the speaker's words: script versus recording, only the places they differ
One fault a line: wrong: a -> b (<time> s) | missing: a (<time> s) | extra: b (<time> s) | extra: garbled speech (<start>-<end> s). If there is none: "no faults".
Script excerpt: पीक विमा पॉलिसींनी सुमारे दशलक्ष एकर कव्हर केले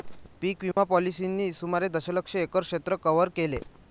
extra: क्षेत्र (2.6 s)